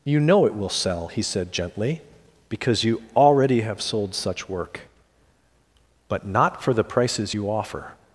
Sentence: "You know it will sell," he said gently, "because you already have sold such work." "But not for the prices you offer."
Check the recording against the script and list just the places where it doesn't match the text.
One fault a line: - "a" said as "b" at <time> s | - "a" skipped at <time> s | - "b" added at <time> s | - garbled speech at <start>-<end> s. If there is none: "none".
none